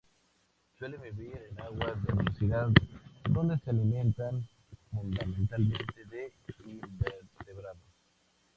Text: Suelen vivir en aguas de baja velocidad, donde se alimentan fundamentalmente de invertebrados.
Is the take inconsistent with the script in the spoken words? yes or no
yes